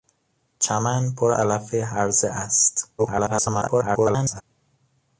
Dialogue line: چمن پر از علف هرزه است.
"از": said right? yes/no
no